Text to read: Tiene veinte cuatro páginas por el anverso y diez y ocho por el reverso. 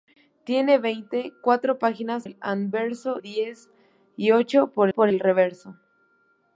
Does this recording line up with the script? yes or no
no